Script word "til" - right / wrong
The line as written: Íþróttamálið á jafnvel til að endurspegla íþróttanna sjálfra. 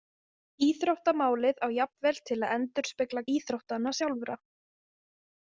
right